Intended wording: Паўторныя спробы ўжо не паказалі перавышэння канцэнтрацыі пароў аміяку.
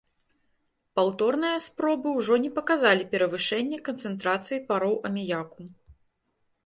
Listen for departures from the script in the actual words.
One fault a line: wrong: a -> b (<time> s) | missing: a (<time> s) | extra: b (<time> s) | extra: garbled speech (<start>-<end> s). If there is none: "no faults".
no faults